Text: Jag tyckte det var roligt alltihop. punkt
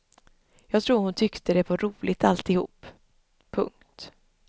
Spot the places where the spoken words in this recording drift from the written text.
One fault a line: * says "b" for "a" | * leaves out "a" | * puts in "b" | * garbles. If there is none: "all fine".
* puts in "tror hon"